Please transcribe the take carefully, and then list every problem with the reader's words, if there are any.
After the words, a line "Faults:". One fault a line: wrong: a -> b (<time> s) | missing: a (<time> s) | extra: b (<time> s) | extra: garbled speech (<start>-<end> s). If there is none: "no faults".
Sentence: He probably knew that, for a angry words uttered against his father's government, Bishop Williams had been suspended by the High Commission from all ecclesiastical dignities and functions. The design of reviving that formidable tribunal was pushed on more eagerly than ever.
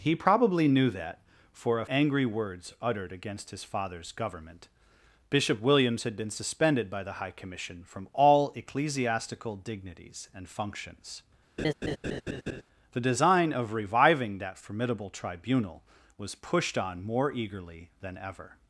He probably knew that, for a angry words uttered against his father's government, Bishop Williams had been suspended by the High Commission from all ecclesiastical dignities and functions. The design of reviving that formidable tribunal was pushed on more eagerly than ever.
Faults:
no faults